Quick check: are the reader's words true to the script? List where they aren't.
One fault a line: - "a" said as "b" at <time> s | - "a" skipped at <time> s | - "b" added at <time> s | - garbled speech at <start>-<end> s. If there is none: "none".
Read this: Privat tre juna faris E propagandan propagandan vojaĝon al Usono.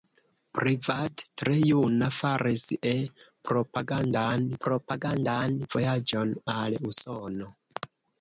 none